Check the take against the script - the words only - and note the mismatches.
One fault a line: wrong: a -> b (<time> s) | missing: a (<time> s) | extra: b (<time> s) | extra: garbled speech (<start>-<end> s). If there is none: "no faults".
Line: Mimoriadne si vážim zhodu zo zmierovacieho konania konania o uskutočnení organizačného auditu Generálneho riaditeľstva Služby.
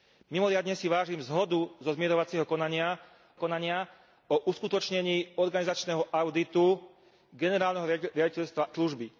no faults